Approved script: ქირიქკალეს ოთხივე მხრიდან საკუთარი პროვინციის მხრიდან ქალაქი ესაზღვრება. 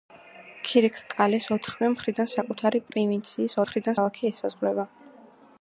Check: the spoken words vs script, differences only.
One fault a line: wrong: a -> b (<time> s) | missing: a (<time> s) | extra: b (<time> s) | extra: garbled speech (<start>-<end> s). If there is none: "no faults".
no faults